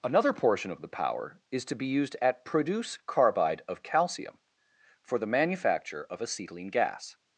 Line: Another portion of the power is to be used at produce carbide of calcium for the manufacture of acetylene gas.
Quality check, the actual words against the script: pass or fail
pass